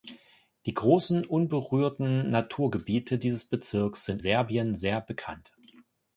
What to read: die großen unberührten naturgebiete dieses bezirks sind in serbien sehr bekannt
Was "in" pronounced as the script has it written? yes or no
no